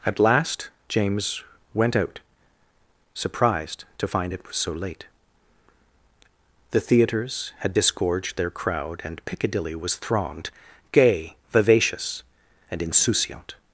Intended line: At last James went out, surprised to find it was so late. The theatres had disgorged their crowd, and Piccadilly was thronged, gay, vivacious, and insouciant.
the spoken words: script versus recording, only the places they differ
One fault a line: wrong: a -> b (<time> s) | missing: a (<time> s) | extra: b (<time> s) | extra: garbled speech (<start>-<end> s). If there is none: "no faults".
no faults